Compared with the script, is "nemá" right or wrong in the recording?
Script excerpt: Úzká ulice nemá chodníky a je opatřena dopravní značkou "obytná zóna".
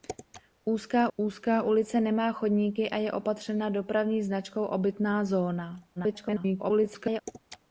right